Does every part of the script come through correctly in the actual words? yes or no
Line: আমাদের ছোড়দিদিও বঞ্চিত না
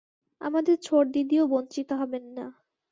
no